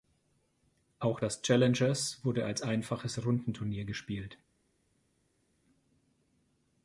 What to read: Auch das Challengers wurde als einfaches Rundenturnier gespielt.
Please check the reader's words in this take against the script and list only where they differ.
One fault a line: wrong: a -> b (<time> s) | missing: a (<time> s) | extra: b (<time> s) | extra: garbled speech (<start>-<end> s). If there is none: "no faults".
no faults